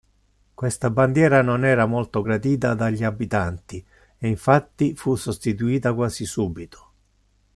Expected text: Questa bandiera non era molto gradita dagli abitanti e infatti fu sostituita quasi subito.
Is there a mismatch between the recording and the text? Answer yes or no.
no